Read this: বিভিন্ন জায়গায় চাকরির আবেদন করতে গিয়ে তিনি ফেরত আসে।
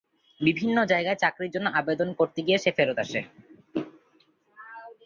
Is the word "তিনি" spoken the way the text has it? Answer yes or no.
no